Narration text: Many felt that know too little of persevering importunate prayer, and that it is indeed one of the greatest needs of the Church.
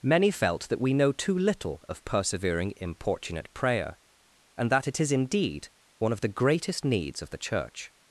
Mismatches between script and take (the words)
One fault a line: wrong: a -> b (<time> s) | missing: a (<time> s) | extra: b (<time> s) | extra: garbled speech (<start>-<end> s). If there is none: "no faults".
extra: we (0.8 s)